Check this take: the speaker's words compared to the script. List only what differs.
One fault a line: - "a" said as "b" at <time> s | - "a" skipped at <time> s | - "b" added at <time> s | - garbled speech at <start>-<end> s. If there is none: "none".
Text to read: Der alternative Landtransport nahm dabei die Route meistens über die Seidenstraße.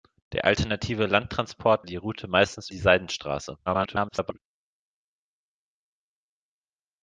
- "nahm dabei" skipped at 1.9 s
- "über" skipped at 2.7 s
- garbled speech at 3.7-4.4 s